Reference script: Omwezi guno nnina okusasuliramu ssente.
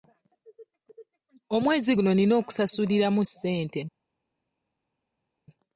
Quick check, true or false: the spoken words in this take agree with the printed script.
true